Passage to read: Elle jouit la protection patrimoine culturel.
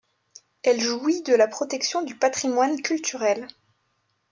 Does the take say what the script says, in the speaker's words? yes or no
no